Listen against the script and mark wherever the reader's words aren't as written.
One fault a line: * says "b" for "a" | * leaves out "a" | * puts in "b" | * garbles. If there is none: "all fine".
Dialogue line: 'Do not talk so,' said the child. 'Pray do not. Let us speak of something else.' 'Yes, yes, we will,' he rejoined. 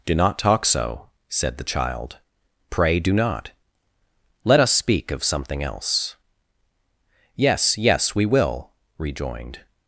* leaves out "he"